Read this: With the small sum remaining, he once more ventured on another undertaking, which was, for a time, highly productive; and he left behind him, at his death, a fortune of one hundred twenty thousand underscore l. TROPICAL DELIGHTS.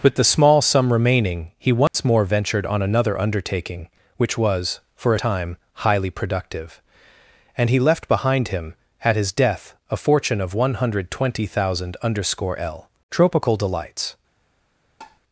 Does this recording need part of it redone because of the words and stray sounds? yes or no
yes